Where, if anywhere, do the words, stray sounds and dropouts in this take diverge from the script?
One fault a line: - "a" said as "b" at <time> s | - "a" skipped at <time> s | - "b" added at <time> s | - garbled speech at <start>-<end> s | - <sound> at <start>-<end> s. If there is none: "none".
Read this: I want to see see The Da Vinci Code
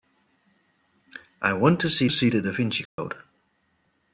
- dropout at 2.9-3.0 s